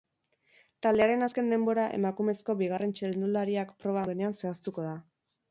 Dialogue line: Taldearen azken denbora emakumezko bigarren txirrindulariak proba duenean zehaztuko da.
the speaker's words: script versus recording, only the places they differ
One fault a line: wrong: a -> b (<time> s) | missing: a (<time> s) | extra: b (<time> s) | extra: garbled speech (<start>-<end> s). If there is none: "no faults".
no faults